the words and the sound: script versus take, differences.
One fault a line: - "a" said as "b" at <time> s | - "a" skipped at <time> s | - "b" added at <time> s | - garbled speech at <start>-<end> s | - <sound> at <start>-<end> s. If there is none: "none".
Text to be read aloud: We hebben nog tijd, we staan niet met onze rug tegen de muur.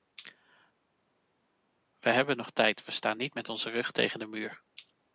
none